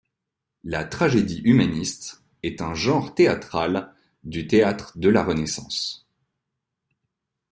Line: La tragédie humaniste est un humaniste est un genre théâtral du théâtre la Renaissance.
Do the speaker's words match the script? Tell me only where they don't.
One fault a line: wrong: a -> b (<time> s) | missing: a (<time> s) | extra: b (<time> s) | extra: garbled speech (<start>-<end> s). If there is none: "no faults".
missing: humaniste est un (2.7 s)
extra: de (5.0 s)